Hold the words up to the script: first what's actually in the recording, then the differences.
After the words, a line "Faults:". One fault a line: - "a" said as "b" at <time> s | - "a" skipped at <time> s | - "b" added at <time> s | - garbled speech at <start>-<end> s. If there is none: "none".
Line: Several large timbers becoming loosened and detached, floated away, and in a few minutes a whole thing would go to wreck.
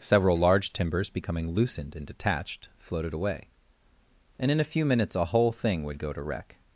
Several large timbers becoming loosened and detached, floated away, and in a few minutes a whole thing would go to wreck.
Faults:
none